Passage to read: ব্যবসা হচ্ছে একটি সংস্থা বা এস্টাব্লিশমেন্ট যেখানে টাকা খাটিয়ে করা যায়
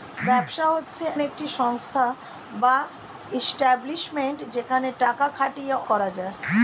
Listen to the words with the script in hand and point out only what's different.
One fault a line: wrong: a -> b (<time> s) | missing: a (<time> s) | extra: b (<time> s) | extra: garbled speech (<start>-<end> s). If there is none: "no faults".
no faults